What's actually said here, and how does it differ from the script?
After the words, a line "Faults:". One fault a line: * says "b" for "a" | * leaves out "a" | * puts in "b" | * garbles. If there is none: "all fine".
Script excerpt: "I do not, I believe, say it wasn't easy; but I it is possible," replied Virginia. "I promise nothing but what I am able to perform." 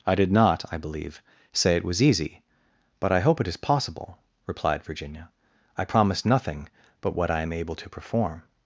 "I did not, I believe, say it was easy; but I hope it is possible," replied Virginia. "I promise nothing but what I am able to perform."
Faults:
* says "did" for "do"
* says "was" for "wasn't"
* puts in "hope"